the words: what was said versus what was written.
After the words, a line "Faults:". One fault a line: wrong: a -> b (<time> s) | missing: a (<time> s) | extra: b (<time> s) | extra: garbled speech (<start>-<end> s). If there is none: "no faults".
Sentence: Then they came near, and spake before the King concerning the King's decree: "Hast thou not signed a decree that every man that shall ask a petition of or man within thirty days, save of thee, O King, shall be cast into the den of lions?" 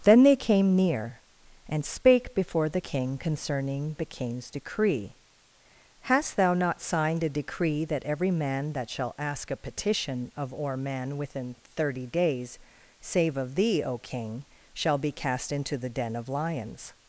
Then they came near, and spake before the King concerning the King's decree: "Hast thou not signed a decree that every man that shall ask a petition of or man within thirty days, save of thee, O King, shall be cast into the den of lions?"
Faults:
no faults